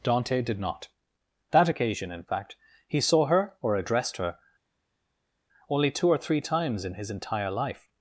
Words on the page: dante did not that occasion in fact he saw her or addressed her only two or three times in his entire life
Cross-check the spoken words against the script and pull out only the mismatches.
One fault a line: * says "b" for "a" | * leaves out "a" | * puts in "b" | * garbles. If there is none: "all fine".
all fine